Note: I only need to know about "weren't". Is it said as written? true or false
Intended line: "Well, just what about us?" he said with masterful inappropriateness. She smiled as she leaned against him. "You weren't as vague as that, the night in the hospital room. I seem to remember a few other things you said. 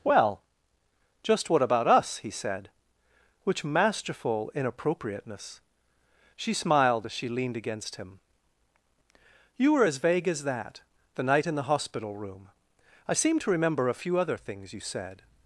false